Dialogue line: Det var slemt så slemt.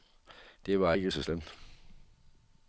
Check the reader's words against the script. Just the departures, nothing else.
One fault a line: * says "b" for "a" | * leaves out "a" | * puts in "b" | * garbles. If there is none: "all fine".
* says "ikke" for "slemt"